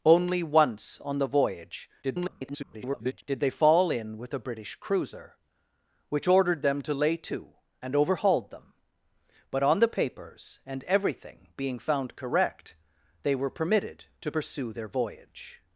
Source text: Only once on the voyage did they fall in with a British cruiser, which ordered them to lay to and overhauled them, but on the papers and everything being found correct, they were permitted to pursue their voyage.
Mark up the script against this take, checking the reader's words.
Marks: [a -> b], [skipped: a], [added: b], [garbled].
Only once on the voyage [garbled] did they fall in with a British cruiser, which ordered them to lay to and overhauled them, but on the papers and everything being found correct, they were permitted to pursue their voyage.